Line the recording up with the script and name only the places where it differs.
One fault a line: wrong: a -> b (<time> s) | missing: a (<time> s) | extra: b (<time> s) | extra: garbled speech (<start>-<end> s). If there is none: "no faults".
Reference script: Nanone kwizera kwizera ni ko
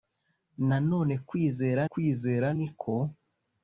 no faults